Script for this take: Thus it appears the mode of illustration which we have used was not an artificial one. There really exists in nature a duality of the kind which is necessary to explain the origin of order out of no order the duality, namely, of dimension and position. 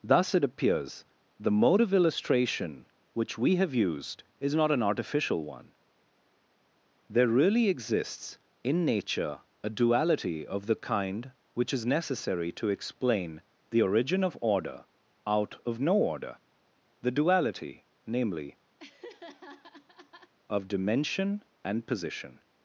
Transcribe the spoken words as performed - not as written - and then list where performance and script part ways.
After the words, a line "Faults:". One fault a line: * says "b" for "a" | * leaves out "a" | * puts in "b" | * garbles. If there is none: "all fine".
Thus it appears the mode of illustration which we have used is not an artificial one. There really exists in nature a duality of the kind which is necessary to explain the origin of order out of no order the duality, namely, of dimension and position.
Faults:
* says "is" for "was"